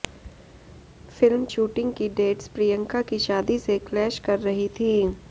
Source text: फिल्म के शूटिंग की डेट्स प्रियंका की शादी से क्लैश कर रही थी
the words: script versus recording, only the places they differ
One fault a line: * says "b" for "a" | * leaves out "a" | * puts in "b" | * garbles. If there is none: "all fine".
* leaves out "के"